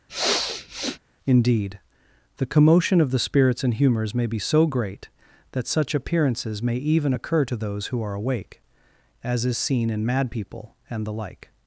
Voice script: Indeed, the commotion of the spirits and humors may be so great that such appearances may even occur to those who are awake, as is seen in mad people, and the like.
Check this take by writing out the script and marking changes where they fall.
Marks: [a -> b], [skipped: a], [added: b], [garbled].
Indeed, the commotion of the spirits and humors may be so great that such appearances may even occur to those who are awake, as is seen in mad people, and the like.